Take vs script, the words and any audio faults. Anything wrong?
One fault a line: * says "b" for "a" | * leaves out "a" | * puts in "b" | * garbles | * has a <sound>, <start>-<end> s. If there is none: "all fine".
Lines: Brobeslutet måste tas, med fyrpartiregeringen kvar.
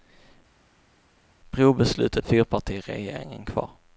* leaves out "måste tas med"